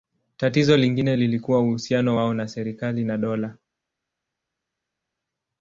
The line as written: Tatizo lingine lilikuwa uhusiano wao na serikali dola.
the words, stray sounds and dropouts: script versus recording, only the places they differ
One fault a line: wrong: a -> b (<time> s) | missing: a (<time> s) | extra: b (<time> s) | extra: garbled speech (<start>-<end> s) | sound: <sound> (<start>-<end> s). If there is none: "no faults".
extra: na (3.0 s)